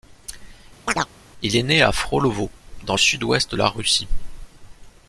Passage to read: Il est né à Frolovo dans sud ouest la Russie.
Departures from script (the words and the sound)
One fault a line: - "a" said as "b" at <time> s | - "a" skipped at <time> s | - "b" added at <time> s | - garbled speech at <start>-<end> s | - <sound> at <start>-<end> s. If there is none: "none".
- chirp at 0.9-1.1 s